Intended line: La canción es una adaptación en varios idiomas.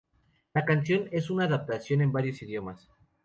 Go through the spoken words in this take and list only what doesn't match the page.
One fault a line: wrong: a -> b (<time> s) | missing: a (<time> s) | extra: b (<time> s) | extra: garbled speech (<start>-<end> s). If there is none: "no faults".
no faults